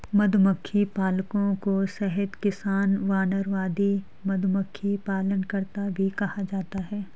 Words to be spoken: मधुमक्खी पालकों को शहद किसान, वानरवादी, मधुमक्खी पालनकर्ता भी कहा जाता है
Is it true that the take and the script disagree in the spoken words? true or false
false